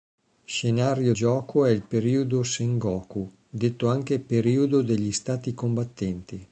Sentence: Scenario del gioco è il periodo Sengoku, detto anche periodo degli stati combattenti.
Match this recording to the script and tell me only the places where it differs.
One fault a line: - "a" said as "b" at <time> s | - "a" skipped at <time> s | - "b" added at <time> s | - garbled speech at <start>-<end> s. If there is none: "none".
- "del" skipped at 1.1 s